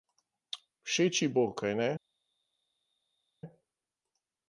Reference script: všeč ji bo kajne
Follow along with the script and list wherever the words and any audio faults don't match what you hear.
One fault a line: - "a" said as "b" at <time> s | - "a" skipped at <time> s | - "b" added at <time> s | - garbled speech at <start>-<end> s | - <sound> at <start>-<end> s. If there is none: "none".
none